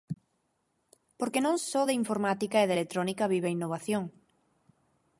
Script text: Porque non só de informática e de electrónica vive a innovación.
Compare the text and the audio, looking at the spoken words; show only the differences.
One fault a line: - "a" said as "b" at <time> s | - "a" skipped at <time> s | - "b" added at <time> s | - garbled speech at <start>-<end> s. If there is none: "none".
none